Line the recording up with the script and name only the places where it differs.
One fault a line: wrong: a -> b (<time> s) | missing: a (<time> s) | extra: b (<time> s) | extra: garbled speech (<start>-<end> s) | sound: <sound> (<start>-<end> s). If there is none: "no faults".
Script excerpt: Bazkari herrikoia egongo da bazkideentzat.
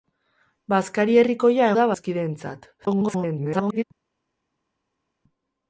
missing: egongo (1.7 s)
extra: garbled speech (2.8-3.8 s)